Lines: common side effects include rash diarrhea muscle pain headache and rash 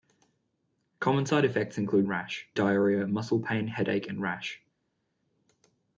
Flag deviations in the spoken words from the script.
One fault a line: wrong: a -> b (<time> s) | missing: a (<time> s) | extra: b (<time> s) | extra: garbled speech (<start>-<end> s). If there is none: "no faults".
no faults